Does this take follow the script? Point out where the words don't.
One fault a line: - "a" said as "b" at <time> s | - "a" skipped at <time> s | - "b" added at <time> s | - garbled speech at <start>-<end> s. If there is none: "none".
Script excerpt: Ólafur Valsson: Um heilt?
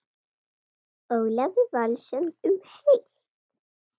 none